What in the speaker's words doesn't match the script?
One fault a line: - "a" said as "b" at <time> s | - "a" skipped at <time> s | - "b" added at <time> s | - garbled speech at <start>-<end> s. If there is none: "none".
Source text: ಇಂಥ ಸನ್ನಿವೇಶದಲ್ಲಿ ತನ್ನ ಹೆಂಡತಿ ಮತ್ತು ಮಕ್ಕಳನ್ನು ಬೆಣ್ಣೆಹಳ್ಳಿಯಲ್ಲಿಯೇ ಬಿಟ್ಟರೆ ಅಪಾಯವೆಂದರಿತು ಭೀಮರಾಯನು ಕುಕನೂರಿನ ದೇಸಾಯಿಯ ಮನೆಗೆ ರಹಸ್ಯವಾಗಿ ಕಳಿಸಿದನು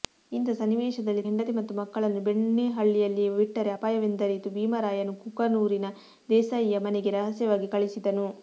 - "ತನ್ನ" skipped at 1.2 s